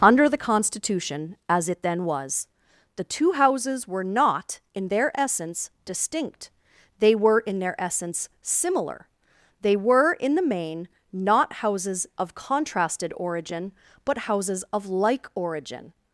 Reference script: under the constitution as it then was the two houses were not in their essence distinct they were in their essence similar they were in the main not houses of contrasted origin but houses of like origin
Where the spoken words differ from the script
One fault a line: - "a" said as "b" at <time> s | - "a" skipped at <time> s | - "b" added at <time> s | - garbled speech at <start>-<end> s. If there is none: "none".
none